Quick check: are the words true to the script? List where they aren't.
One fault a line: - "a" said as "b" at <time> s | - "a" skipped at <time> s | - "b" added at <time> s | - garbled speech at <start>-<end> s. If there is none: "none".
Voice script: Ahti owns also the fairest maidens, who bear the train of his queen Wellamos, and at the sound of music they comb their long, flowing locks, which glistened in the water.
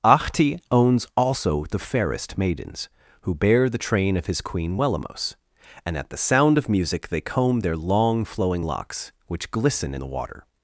- "glistened" said as "glisten" at 9.5 s